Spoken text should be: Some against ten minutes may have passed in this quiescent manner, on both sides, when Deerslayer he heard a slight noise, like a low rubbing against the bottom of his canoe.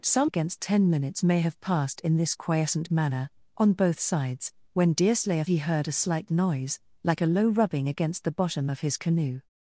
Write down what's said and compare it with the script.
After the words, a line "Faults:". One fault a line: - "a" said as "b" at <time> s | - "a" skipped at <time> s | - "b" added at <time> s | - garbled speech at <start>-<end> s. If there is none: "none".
Some against ten minutes may have passed in this quiescent manner, on both sides, when Deerslayer he heard a slight noise, like a low rubbing against the bottom of his canoe.
Faults:
none